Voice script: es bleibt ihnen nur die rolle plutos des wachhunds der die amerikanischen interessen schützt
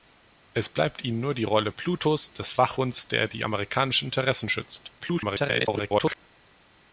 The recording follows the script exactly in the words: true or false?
false